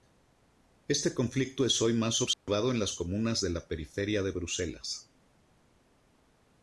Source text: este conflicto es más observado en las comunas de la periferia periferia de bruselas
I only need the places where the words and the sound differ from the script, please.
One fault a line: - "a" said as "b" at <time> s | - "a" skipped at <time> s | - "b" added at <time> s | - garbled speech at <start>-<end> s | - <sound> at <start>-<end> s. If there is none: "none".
- "hoy" added at 1.8 s
- dropout at 2.3-2.5 s
- "periferia" skipped at 4.2 s